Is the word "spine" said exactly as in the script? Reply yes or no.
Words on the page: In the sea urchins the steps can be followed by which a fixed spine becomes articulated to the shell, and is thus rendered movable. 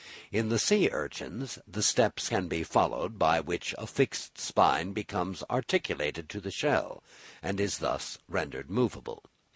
yes